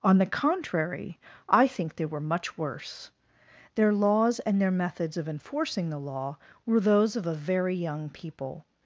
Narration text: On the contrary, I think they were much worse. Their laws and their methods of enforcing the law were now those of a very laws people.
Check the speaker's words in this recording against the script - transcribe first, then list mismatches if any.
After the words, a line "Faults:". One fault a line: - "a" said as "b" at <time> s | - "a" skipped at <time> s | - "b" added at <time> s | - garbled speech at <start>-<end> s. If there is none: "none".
On the contrary, I think they were much worse. Their laws and their methods of enforcing the law were those of a very young people.
Faults:
- "now" skipped at 6.8 s
- "laws" said as "young" at 7.8 s